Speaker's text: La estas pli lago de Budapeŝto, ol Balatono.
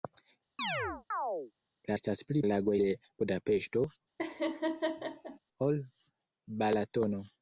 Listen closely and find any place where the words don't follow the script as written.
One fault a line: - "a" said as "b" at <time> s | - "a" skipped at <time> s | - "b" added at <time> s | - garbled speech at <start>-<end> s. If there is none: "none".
none